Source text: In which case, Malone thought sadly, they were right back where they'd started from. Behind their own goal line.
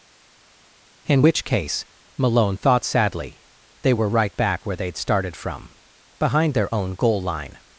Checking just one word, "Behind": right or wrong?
right